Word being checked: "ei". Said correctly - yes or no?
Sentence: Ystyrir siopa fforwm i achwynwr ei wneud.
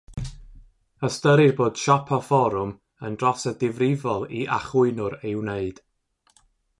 yes